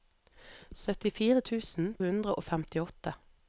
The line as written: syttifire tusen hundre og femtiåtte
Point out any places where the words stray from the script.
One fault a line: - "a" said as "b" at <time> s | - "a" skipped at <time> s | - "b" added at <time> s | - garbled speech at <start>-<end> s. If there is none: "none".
none